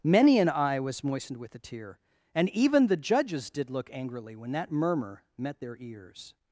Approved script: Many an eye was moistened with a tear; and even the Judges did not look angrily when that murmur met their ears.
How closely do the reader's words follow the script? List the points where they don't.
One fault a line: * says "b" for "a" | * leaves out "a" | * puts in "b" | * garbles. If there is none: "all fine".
* leaves out "not"